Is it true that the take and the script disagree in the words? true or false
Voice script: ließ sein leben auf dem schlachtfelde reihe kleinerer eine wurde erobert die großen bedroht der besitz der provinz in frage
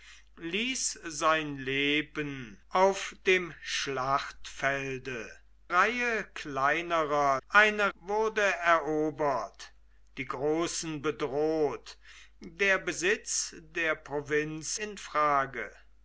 false